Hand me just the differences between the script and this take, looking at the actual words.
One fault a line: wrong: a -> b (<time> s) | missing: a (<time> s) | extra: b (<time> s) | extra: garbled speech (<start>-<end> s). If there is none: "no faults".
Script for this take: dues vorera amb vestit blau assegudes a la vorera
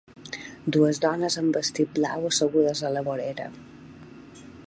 wrong: vorera -> dones (1.0 s)